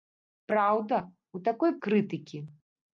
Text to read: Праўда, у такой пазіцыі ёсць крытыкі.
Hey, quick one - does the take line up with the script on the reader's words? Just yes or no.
no